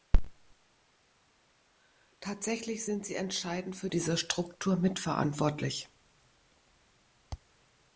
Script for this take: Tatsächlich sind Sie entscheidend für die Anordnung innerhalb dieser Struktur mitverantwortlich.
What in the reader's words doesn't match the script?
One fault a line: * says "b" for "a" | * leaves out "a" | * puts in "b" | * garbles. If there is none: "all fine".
* leaves out "die Anordnung innerhalb"